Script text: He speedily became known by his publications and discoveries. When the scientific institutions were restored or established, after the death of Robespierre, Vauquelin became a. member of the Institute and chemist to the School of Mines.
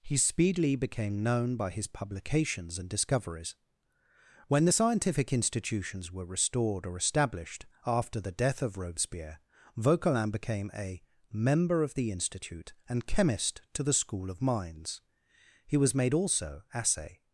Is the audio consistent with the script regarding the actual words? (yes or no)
no